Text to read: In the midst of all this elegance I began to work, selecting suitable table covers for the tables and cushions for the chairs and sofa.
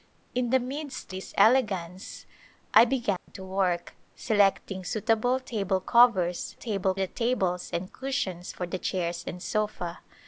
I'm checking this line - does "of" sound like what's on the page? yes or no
no